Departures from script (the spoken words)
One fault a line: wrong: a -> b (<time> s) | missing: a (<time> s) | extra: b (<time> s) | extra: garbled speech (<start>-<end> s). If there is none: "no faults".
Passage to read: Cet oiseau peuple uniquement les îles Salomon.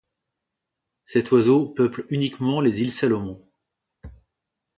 no faults